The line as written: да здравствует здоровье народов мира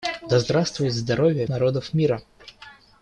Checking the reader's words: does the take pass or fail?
pass